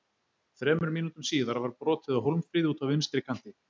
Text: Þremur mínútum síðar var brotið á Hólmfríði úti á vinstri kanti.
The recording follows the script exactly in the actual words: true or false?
true